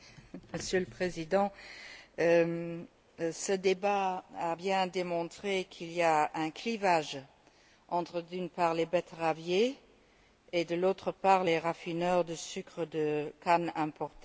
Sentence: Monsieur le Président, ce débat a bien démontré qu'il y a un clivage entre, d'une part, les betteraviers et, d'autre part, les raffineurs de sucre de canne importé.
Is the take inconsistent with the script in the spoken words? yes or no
no